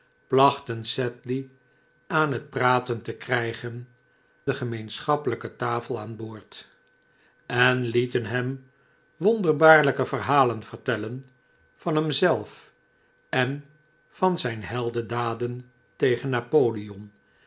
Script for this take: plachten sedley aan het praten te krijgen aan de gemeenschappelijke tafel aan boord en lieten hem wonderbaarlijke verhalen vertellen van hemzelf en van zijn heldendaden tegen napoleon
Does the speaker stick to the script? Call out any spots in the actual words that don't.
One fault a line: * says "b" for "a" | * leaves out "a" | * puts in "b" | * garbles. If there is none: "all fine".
* leaves out "aan"